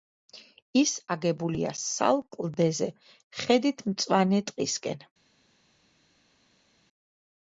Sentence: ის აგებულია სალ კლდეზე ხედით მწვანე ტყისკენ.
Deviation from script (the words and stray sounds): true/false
false